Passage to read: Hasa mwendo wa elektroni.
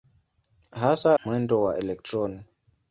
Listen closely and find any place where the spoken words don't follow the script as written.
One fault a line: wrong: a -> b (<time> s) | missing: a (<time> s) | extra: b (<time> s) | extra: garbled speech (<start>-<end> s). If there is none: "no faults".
no faults